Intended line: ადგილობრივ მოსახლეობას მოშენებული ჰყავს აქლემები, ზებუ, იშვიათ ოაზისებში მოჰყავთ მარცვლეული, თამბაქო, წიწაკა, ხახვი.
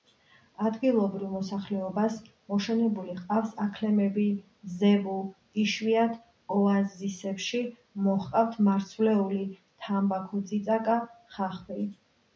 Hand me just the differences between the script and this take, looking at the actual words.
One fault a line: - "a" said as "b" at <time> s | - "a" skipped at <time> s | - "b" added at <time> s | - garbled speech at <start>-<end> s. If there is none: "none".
none